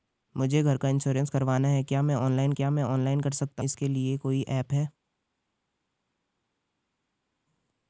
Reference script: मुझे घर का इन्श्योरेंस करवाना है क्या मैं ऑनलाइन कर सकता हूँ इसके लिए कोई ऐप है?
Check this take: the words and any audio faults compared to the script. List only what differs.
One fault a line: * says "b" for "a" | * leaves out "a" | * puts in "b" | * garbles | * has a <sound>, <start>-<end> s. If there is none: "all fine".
* puts in "क्या मैं ऑनलाइन"
* leaves out "हूँ"